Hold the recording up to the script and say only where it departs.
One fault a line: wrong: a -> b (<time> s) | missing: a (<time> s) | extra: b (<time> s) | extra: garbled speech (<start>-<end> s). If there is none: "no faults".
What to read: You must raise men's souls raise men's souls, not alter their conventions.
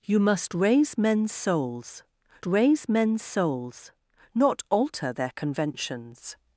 no faults